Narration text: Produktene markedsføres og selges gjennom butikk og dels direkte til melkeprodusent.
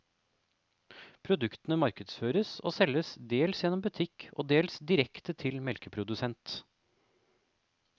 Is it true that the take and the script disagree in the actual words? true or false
true